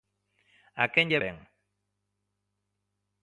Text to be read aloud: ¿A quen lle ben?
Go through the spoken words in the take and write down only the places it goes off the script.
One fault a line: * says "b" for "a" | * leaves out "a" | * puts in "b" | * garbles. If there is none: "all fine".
all fine